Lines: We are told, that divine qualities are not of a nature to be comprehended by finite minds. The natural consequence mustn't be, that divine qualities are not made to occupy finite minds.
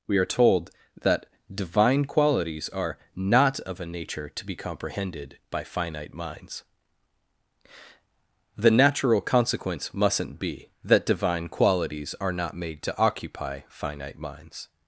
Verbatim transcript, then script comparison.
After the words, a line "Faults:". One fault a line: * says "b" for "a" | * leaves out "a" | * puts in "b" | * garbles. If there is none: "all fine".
We are told, that divine qualities are not of a nature to be comprehended by finite minds. The natural consequence mustn't be, that divine qualities are not made to occupy finite minds.
Faults:
all fine